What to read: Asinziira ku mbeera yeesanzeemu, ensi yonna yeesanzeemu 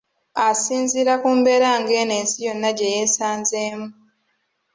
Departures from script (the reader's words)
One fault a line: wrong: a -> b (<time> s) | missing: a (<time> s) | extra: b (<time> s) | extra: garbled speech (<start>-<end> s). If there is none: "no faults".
wrong: yeesanzeemu -> ngeno (1.8 s)
extra: gye (2.8 s)